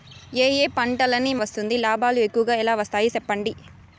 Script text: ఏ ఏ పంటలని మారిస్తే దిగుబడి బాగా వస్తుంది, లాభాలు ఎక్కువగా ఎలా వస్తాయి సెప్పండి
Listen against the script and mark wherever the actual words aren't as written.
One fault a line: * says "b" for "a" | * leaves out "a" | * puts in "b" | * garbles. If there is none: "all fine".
* leaves out "మారిస్తే దిగుబడి బాగా"